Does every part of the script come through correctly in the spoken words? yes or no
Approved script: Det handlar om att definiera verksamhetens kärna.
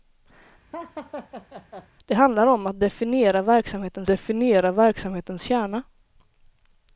no